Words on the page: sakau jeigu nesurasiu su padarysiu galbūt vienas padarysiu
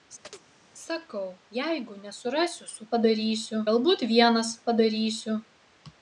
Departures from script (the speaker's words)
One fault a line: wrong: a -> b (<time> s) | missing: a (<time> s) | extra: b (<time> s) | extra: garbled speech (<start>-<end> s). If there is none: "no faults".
no faults